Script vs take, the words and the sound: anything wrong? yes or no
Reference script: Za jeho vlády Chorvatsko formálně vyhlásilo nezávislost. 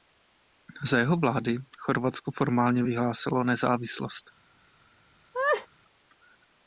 yes